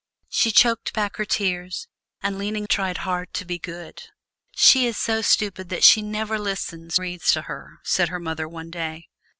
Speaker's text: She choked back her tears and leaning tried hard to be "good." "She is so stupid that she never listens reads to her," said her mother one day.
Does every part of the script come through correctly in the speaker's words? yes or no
yes